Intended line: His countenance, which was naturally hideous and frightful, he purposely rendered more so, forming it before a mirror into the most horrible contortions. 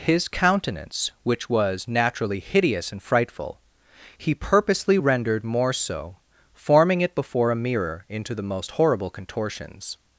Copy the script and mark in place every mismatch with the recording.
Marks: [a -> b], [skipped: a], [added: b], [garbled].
His countenance, which was naturally hideous and frightful, he purposely rendered more so, forming it before a mirror into the most horrible contortions.